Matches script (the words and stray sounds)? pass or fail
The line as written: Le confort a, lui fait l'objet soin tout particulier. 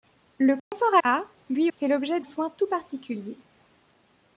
fail